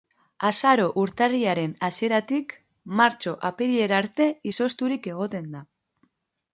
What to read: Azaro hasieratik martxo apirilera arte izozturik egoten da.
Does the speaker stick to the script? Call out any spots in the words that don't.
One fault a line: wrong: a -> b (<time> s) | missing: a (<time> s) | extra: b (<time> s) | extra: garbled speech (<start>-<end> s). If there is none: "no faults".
extra: urtarrilaren (1.0 s)